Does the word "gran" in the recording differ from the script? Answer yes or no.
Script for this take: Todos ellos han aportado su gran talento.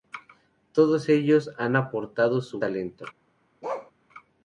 yes